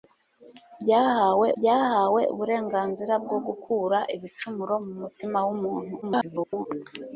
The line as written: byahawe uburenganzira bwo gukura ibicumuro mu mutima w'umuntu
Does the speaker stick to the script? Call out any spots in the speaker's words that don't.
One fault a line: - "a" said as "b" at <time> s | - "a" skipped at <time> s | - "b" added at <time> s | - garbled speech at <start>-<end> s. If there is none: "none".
- "byahawe" added at 1.6 s
- garbled speech at 6.0-6.7 s